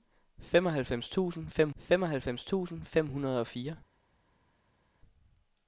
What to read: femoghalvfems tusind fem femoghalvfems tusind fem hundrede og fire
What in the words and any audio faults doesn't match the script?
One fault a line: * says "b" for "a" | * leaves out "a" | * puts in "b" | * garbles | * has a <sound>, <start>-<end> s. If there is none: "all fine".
all fine